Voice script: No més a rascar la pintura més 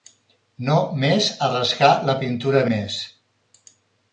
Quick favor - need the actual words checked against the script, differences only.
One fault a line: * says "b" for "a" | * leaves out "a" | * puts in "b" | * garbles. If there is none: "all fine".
all fine